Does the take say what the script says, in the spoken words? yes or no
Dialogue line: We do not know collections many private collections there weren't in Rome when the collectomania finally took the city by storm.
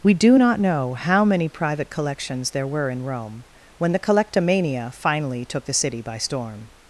no